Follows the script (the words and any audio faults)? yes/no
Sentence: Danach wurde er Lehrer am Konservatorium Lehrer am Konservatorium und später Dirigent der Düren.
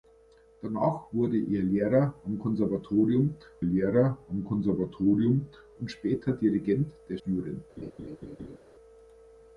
no